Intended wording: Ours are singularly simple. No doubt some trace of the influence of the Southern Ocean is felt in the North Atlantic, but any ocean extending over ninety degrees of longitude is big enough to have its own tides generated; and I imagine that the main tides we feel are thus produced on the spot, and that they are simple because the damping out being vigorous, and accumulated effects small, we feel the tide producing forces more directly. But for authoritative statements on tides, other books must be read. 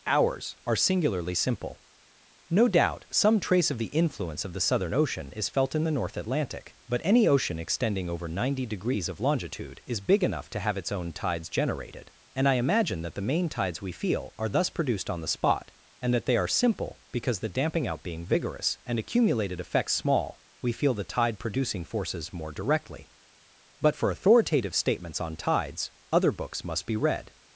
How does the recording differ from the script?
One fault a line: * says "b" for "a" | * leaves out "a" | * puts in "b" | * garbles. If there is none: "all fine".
all fine